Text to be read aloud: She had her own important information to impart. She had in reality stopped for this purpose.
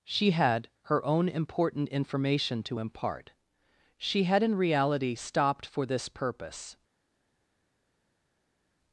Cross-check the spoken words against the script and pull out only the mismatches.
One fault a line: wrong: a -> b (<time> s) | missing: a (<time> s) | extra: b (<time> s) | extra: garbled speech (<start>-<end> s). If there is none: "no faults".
no faults